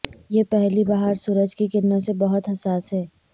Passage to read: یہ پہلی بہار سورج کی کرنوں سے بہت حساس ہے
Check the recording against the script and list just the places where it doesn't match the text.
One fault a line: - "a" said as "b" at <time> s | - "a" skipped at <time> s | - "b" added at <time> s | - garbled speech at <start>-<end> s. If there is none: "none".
none